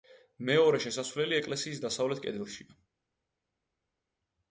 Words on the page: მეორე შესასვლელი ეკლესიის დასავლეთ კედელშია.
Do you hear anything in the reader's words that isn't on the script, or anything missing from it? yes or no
no